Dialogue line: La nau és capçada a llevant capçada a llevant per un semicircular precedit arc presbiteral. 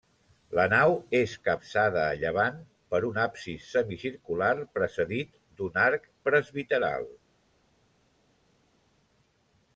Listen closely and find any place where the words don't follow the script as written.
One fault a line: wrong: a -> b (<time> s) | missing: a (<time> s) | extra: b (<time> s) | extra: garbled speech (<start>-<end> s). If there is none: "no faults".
missing: capçada a llevant (2.6 s)
extra: absis (3.2 s)
extra: d'un (5.6 s)